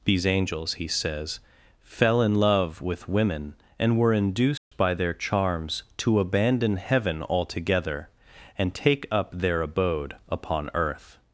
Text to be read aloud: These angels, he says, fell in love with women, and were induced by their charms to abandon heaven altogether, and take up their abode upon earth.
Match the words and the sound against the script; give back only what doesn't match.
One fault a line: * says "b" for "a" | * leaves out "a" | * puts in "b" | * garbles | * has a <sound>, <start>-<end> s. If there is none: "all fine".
* has a dropout, 4.6-4.7 s